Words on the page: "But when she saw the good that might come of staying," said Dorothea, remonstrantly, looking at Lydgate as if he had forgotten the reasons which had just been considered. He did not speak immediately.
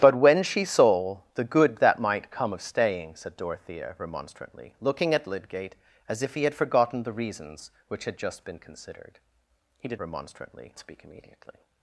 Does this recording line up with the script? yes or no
no